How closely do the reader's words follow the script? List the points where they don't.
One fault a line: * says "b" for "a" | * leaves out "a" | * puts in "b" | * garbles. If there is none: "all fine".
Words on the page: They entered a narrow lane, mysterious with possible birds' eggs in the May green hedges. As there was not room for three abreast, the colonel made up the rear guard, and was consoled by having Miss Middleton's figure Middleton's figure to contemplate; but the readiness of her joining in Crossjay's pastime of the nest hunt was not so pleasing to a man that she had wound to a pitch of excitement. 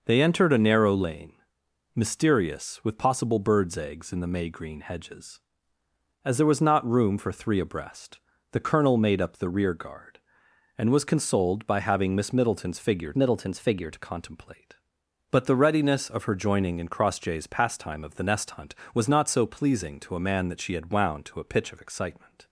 all fine